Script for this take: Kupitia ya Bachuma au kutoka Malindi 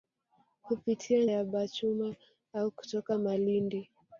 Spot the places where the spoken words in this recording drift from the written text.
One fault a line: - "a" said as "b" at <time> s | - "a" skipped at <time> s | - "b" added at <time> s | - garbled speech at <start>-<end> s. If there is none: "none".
none